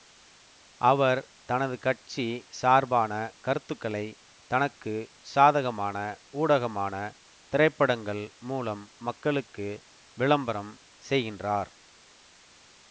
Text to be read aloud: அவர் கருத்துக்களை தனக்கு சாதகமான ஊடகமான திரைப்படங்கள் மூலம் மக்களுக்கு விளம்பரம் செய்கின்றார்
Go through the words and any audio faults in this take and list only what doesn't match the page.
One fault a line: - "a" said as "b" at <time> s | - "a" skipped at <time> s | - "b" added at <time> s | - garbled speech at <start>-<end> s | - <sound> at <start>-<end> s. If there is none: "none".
- "தனது கட்சி சார்பான" added at 1.4 s